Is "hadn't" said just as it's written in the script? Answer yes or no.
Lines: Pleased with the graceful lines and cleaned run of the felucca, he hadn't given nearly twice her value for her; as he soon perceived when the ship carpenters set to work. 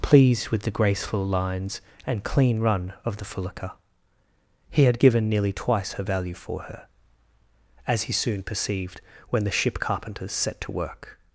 no